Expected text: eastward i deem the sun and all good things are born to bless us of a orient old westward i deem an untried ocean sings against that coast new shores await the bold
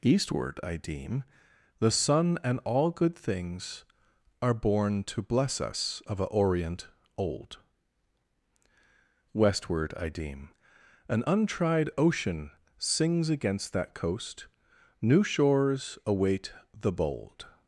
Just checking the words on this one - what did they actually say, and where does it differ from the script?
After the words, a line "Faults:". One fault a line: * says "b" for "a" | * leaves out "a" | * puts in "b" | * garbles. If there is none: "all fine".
eastward i deem the sun and all good things are born to bless us of a orient old westward i deem an untried ocean sings against that coast new shores await the bold
Faults:
all fine